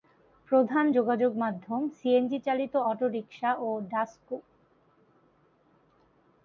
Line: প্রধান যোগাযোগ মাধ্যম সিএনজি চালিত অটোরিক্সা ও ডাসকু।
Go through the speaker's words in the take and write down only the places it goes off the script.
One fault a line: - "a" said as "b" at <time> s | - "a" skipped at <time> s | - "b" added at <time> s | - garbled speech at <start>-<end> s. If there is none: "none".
none